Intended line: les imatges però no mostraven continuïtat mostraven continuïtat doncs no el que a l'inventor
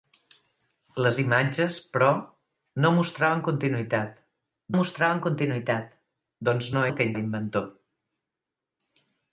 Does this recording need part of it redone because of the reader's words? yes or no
no